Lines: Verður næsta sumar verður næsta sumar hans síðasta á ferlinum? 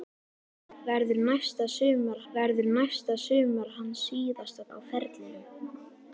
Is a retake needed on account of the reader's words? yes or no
no